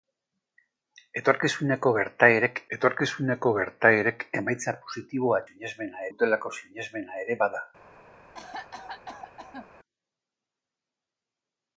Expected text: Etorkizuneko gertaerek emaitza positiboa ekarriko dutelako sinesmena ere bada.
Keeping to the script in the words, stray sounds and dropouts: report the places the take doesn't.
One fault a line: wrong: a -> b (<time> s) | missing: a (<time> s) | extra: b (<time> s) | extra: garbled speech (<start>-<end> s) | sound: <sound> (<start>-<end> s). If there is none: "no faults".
extra: etorkizuneko gertaerek (2.8 s)
wrong: ekarriko -> sinesmena (5.5 s)
sound: cough (8.3-9.7 s)